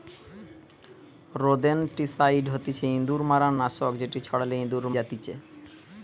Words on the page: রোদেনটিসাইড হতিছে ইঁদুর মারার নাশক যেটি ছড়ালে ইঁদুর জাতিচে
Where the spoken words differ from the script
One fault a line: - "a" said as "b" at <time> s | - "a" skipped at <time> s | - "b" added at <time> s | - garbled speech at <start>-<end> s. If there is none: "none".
none